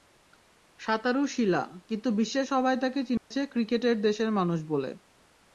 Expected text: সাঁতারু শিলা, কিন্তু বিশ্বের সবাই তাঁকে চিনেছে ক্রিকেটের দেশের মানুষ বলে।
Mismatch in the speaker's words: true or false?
false